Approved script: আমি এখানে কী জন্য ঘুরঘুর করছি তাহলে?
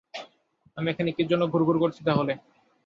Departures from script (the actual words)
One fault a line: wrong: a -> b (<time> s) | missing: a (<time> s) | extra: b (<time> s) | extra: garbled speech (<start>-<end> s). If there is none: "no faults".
no faults